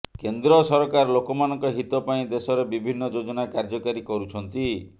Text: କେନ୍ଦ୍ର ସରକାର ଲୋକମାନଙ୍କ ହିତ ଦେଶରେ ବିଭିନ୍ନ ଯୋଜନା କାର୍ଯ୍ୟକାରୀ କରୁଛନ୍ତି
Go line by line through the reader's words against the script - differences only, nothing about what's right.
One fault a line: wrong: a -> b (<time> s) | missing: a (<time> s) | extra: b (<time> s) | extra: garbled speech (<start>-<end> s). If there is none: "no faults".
extra: ପାଇଁ (2.1 s)